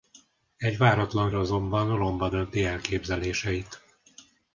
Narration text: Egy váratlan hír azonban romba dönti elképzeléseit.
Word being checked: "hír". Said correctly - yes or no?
no